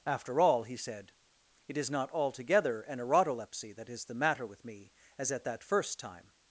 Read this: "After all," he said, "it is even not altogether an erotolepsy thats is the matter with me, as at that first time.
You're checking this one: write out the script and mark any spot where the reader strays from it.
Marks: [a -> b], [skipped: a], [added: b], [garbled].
"After all," he said, "it is [skipped: even] not altogether an erotolepsy [thats -> that] is the matter with me, as at that first time.